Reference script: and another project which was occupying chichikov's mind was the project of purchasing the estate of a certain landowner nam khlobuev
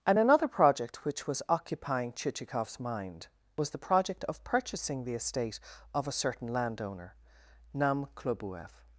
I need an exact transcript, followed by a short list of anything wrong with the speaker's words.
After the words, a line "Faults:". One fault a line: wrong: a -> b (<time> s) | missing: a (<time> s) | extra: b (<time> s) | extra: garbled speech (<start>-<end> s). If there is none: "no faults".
and another project which was occupying chichikov's mind was the project of purchasing the estate of a certain landowner nam khlobuev
Faults:
no faults